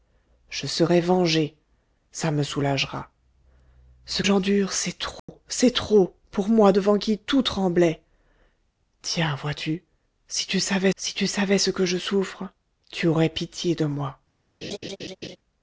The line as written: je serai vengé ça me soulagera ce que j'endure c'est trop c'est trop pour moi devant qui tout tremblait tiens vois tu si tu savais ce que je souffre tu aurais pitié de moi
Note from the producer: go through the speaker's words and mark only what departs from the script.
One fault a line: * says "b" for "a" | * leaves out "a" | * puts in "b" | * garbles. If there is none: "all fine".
* leaves out "que"
* puts in "si tu savais"